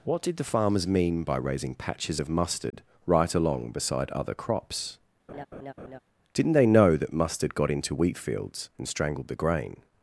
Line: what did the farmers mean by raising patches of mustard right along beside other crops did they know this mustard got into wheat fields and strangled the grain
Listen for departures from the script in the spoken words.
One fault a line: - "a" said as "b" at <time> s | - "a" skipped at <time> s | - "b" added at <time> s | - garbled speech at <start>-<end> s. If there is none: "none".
- "did" said as "didn't" at 6.3 s
- "this" said as "that" at 7.0 s